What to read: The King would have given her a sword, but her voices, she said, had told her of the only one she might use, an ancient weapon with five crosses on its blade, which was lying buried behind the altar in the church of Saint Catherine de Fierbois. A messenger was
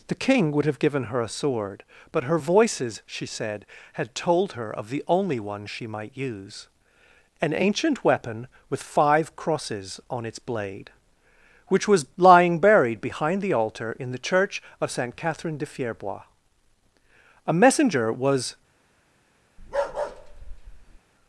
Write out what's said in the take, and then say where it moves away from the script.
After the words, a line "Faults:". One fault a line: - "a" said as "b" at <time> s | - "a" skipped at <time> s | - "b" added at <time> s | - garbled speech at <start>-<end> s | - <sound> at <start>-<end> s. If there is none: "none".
The King would have given her a sword, but her voices, she said, had told her of the only one she might use, an ancient weapon with five crosses on its blade, which was lying buried behind the altar in the church of Saint Catherine de Fierbois. A messenger was
Faults:
- bark at 19.6-21.0 s